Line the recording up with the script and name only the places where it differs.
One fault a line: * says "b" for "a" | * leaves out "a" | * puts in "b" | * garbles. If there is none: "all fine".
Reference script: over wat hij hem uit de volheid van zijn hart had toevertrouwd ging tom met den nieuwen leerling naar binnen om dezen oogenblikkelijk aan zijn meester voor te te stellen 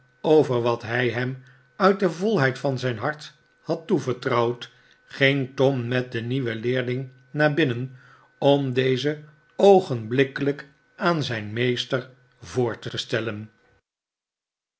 all fine